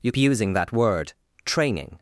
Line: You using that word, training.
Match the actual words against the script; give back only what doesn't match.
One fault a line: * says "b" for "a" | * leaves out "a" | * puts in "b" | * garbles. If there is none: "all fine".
all fine